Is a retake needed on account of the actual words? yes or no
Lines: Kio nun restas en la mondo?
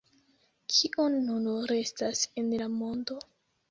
no